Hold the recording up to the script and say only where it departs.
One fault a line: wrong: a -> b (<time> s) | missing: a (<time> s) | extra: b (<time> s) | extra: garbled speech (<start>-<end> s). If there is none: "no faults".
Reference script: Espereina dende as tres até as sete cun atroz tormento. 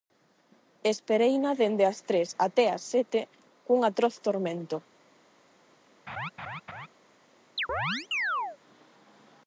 no faults